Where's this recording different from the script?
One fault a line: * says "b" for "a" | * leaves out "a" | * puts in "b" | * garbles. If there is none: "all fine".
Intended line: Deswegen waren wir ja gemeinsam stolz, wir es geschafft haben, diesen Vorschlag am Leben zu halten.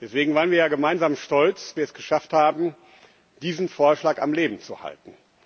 all fine